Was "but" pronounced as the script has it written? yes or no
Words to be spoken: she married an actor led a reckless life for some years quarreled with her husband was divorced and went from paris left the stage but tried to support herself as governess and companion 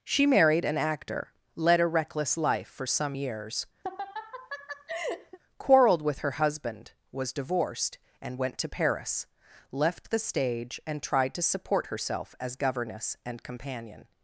no